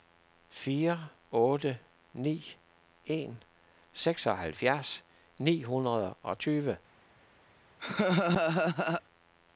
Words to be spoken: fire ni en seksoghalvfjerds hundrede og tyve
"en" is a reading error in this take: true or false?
false